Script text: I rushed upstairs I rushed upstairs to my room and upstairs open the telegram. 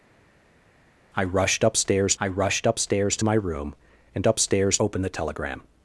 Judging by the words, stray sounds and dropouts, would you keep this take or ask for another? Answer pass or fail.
pass